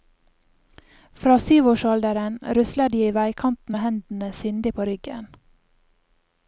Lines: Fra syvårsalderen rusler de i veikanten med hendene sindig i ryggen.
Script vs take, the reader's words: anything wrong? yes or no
yes